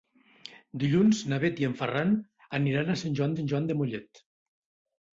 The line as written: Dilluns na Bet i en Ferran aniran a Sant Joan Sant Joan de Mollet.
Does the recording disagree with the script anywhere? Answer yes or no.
no